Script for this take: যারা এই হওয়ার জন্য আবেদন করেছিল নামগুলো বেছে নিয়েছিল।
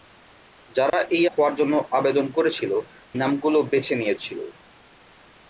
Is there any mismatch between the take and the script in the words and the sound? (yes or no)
yes